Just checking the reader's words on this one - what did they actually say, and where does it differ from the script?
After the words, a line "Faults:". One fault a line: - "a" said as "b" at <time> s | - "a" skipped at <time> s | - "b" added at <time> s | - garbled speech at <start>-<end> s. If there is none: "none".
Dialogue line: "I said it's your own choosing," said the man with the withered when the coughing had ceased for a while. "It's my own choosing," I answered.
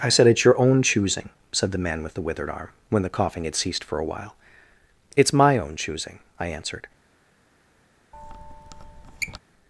"I said it's your own choosing," said the man with the withered arm, when the coughing had ceased for a while. "It's my own choosing," I answered.
Faults:
- "arm" added at 2.5 s